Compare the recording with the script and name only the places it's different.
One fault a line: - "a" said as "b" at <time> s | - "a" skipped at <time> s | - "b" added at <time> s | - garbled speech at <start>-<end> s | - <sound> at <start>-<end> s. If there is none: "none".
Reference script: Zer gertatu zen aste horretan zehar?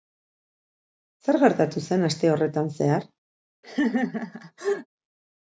- laugh at 3.6-4.9 s